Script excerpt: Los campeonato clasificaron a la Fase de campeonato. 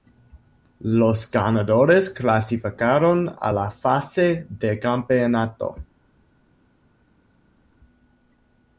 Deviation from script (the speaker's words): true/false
true